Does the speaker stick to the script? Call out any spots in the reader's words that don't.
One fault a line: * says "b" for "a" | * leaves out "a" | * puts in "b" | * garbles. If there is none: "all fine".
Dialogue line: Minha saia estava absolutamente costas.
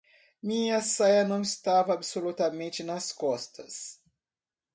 * puts in "não"
* puts in "nas"